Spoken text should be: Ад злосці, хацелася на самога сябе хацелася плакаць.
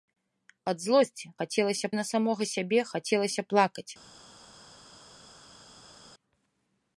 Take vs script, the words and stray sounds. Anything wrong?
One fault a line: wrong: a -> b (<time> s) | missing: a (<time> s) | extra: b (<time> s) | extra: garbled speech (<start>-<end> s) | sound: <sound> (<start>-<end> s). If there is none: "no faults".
no faults